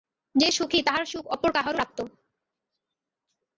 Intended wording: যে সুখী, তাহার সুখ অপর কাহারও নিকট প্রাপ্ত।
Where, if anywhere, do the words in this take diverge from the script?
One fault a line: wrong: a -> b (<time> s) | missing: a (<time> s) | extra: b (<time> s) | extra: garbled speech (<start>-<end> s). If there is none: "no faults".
missing: নিকট (1.8 s)